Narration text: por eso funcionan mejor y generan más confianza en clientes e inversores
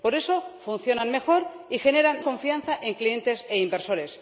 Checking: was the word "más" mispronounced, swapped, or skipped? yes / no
yes